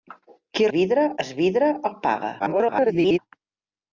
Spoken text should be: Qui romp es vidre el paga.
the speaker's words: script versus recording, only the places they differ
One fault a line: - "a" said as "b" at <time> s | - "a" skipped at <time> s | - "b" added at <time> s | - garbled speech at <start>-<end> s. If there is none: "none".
- "romp" said as "vidre" at 0.8 s
- garbled speech at 2.4-3.2 s